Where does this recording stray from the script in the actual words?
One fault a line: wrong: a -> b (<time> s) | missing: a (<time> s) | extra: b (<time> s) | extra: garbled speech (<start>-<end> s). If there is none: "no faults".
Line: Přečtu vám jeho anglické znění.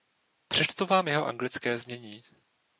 no faults